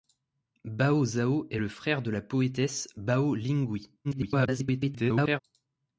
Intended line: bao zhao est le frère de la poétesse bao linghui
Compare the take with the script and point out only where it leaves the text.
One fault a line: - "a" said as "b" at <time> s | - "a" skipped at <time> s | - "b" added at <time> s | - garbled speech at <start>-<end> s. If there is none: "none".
- garbled speech at 4.0-5.4 s